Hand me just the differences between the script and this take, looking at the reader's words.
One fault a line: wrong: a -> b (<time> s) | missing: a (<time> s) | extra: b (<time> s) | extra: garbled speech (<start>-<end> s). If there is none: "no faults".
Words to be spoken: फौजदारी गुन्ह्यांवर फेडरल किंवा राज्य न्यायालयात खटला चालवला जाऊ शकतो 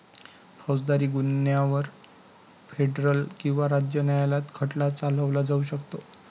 no faults